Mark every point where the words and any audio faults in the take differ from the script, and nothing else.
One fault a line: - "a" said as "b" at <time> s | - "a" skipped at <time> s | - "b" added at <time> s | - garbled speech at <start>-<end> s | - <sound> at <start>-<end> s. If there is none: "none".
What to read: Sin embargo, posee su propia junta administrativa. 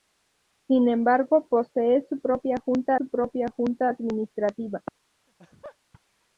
- "su propia junta" added at 2.9 s
- laugh at 5.3-5.8 s